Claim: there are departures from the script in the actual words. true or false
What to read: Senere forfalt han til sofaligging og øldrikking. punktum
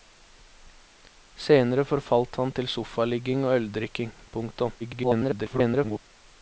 true